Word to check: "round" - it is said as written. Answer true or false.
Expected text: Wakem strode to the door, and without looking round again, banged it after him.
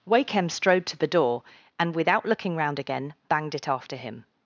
true